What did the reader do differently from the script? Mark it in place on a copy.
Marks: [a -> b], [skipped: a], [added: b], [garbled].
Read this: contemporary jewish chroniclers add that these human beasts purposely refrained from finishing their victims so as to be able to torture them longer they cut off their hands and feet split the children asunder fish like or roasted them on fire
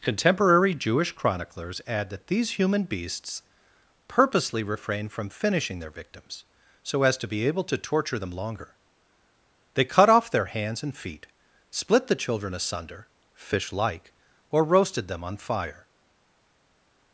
contemporary jewish chroniclers add that these human beasts purposely refrained from finishing their victims so as to be able to torture them longer they cut off their hands and feet split the children asunder fish like or roasted them on fire